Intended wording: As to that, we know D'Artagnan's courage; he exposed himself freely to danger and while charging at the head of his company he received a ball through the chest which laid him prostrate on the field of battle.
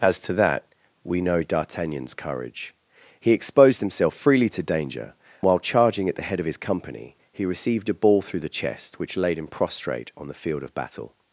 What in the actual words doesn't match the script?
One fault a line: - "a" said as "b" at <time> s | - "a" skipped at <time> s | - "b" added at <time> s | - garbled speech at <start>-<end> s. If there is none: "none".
- "and" skipped at 5.1 s